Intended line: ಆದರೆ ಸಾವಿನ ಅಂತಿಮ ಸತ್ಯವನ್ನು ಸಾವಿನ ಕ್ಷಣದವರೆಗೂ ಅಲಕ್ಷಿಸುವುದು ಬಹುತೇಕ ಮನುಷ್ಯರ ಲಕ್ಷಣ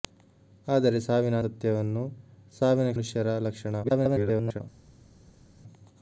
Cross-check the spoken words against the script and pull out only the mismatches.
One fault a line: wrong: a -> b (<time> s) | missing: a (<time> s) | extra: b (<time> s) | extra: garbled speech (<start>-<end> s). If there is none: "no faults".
missing: ಅಂತಿಮ (1.4 s)
missing: ಕ್ಷಣದವರೆಗೂ ಅಲಕ್ಷಿಸುವುದು ಬಹುತೇಕ (2.9 s)
extra: garbled speech (3.8-4.6 s)